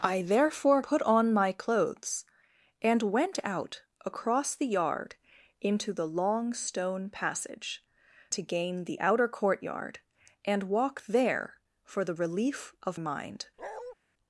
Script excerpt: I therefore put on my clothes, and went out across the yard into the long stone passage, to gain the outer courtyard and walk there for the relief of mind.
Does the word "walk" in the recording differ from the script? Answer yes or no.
no